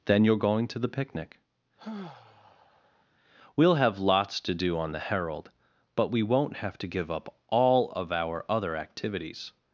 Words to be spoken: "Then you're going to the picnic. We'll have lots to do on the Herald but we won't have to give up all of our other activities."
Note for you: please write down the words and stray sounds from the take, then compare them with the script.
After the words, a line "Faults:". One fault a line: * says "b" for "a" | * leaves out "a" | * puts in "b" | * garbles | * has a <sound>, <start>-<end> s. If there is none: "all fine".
"Then you're going to the picnic. We'll have lots to do on the Herald but we won't have to give up all of our other activities."
Faults:
* has a sigh, 1.8-3.0 s